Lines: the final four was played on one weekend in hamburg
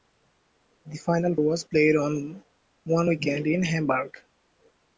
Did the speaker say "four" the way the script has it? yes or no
no